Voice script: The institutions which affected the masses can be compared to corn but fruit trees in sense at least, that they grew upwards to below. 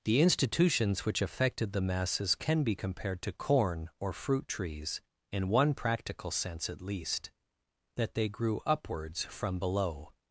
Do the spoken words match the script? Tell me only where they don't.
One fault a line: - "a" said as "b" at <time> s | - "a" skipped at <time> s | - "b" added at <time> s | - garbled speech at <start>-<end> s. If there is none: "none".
- "but" said as "or" at 4.0 s
- "one practical" added at 5.5 s
- "to" said as "from" at 9.2 s